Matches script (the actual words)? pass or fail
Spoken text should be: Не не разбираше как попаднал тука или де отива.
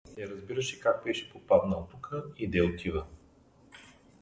fail